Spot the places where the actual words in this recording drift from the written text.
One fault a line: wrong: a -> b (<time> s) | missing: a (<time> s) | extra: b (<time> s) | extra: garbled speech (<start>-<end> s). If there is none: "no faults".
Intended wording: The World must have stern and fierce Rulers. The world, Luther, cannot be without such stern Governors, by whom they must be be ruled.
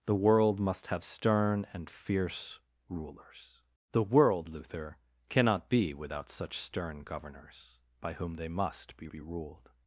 no faults